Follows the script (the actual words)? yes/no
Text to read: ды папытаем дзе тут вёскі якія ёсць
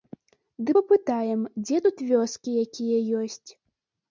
yes